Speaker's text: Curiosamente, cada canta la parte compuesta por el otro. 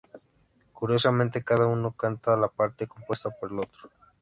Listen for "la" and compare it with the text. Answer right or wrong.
right